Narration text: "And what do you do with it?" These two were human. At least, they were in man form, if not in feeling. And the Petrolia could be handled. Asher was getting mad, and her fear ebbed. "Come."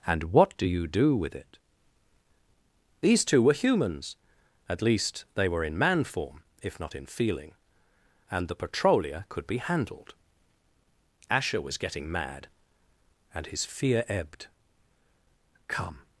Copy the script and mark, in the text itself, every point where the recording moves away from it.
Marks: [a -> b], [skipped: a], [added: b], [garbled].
"And what do you do with it?" These two were [human. -> humans] At least, they were in man form, if not in feeling. And the Petrolia could be handled. Asher was getting mad, and [her -> his] fear ebbed. "Come."